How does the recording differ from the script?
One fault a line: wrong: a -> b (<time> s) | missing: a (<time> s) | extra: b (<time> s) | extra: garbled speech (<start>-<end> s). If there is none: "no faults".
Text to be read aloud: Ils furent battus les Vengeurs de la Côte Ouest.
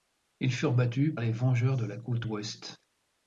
no faults